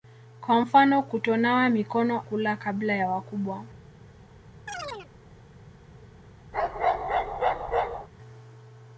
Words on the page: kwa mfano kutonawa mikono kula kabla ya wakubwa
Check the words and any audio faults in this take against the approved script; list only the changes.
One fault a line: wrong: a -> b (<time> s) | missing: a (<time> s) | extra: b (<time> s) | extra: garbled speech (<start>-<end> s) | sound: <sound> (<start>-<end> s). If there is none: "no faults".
sound: chirp (4.7-5.1 s)
sound: bark (6.5-8.1 s)